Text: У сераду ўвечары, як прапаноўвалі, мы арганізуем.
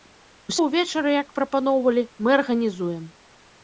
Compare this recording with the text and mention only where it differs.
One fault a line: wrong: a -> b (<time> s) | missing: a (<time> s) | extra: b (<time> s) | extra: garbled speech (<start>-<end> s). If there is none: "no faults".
missing: сераду (0.5 s)